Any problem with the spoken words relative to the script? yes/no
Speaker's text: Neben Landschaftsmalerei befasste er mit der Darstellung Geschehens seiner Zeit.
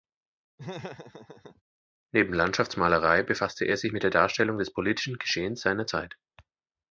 yes